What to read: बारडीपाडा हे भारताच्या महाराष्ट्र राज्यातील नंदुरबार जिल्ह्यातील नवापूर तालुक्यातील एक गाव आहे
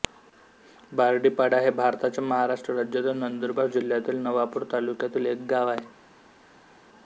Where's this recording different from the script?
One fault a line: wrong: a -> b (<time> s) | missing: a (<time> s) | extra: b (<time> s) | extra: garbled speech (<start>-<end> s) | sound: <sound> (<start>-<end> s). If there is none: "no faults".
no faults